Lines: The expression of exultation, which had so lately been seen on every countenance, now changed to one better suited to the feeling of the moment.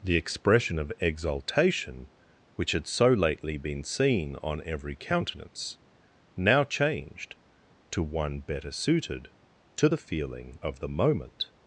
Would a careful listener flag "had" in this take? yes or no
no